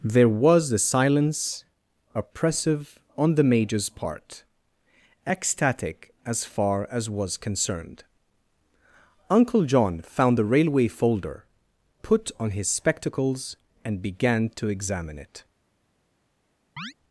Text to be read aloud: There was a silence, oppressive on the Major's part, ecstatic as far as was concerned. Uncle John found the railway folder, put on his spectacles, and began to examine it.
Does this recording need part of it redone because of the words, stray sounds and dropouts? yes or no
yes